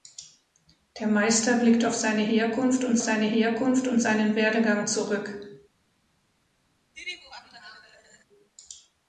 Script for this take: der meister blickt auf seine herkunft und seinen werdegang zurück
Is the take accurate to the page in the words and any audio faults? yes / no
no